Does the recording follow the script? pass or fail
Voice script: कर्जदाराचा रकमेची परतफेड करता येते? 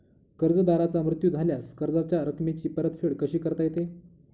fail